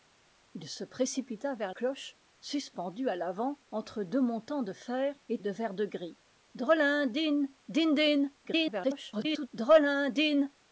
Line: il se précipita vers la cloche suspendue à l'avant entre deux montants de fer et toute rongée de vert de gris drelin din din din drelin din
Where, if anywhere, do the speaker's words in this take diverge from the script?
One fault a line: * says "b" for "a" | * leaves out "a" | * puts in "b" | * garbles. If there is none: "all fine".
* leaves out "la"
* leaves out "toute rongée"
* garbles